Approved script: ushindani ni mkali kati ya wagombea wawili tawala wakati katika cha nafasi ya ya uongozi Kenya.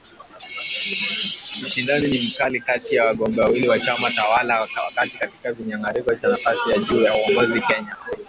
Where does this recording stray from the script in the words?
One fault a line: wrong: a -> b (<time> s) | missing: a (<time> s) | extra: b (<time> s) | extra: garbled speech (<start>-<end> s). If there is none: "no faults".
extra: wa chama (3.7 s)
extra: kinyang'anyiro (5.5 s)
extra: juu (6.8 s)